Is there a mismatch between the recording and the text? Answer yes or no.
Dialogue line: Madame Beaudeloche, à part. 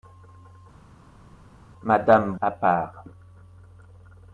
yes